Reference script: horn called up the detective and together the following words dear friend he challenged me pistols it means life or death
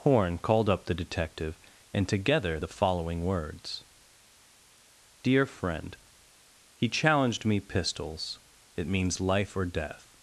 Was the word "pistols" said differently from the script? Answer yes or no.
no